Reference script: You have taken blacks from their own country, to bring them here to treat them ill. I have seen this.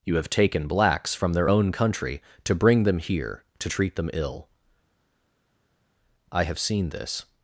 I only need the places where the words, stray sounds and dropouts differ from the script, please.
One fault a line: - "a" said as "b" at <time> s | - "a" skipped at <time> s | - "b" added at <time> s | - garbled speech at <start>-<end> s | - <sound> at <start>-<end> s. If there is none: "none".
none